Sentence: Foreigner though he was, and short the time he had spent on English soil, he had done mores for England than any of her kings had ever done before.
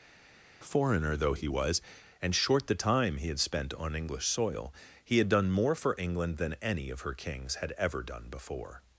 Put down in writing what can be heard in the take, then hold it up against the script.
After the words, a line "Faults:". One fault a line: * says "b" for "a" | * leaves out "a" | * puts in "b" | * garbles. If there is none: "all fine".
Foreigner though he was, and short the time he had spent on English soil, he had done more for England than any of her kings had ever done before.
Faults:
* says "more" for "mores"